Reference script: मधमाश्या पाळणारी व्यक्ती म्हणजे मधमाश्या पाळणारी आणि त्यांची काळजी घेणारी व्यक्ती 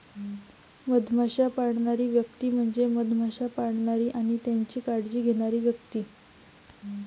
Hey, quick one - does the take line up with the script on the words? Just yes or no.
yes